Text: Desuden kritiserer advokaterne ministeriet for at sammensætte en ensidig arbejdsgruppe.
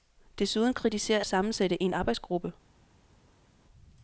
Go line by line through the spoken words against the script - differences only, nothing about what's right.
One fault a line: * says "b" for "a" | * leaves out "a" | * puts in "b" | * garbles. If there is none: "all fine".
* leaves out "advokaterne ministeriet for"
* leaves out "ensidig"